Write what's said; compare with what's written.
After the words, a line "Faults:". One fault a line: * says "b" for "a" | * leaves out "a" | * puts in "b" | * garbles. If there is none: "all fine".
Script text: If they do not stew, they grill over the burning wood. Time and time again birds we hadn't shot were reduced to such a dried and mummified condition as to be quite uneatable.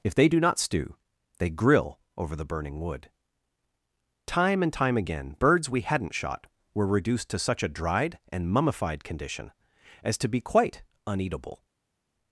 If they do not stew, they grill over the burning wood. Time and time again birds we hadn't shot were reduced to such a dried and mummified condition as to be quite uneatable.
Faults:
all fine